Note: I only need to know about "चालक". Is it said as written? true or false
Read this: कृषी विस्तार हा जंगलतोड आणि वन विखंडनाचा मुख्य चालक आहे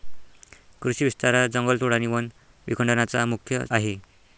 false